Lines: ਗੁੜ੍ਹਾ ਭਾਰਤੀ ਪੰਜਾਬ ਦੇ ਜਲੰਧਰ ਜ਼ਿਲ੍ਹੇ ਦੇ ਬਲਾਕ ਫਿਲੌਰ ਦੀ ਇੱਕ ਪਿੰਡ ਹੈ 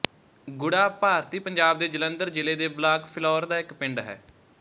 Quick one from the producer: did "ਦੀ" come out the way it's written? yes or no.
no